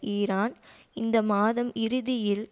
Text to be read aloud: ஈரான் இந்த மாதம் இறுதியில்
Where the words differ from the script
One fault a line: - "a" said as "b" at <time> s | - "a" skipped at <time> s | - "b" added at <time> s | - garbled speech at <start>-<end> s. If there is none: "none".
none